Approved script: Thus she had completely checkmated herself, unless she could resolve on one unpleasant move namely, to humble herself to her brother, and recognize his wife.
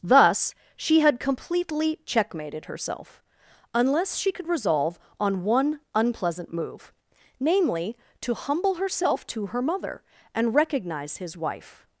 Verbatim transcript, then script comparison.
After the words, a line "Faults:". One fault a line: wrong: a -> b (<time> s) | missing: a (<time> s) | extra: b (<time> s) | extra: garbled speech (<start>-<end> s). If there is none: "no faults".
Thus she had completely checkmated herself, unless she could resolve on one unpleasant move namely, to humble herself to her mother, and recognize his wife.
Faults:
wrong: brother -> mother (9.6 s)